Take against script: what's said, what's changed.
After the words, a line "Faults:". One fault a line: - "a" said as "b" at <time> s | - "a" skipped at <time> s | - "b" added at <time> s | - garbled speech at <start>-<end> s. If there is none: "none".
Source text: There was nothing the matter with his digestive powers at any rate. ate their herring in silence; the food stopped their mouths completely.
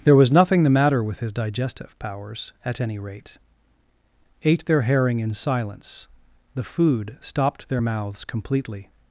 There was nothing the matter with his digestive powers at any rate. ate their herring in silence; the food stopped their mouths completely.
Faults:
none